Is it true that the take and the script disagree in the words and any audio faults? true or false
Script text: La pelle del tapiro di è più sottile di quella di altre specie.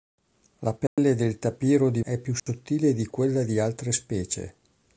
true